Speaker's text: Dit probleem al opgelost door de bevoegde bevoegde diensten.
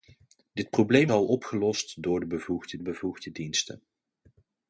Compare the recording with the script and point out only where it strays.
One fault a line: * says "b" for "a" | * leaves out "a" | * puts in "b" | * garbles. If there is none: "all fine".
all fine